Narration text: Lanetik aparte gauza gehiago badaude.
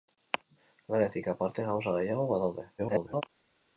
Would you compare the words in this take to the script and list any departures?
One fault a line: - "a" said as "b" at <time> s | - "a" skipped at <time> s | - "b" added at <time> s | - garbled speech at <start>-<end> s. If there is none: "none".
- garbled speech at 2.8-3.2 s